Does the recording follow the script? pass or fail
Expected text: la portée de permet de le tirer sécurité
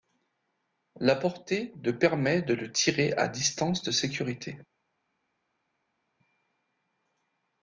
fail